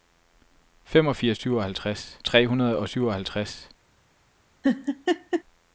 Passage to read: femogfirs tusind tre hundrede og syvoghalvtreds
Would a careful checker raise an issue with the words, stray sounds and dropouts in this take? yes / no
yes